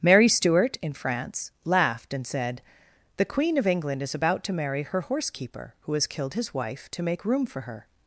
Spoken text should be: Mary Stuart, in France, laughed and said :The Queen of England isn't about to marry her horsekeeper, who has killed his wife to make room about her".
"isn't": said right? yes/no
no